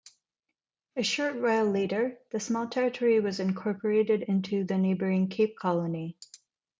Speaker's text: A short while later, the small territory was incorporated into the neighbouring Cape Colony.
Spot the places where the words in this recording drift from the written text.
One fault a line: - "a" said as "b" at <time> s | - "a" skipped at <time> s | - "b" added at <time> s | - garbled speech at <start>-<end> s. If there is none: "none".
none